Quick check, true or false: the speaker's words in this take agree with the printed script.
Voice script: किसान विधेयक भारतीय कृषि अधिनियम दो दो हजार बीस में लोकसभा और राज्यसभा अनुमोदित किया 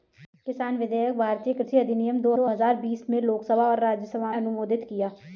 true